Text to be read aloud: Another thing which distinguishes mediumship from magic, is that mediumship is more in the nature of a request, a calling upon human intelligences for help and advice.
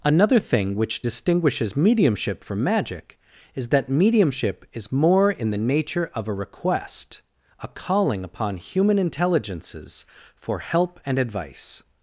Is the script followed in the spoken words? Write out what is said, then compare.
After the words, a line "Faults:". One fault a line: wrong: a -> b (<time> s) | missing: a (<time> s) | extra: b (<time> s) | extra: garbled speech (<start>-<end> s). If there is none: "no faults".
Another thing which distinguishes mediumship from magic, is that mediumship is more in the nature of a request, a calling upon human intelligences for help and advice.
Faults:
no faults